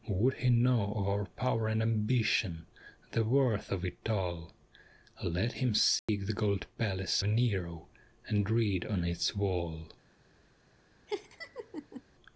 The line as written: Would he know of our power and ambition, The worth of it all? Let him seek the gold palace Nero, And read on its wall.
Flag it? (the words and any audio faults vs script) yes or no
yes